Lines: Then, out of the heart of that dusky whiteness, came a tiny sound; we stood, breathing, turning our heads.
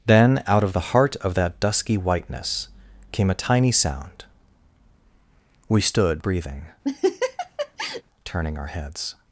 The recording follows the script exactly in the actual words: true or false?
true